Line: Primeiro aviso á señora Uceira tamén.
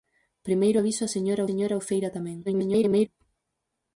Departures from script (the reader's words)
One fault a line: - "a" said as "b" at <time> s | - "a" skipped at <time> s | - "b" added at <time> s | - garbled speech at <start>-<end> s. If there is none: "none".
- "señora" added at 1.5 s
- garbled speech at 2.5-3.1 s